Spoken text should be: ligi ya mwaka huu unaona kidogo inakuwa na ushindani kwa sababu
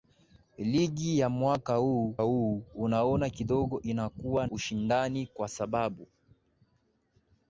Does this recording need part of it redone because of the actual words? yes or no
yes